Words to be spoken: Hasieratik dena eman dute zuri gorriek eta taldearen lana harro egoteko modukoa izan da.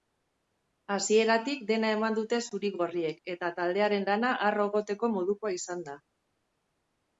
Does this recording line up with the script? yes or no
yes